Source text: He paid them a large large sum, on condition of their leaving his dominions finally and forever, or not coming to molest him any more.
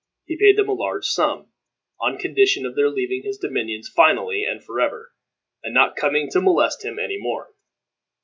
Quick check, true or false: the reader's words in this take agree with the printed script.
false